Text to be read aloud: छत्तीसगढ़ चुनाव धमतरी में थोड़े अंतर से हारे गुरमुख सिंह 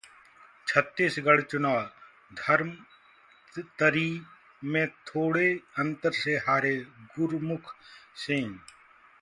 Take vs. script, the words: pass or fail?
pass